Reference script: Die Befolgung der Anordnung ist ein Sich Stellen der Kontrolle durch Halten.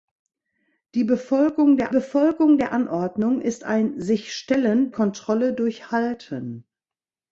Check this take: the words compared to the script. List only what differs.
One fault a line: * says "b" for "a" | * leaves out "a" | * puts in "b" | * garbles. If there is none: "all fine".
* puts in "Befolgung der"
* leaves out "der"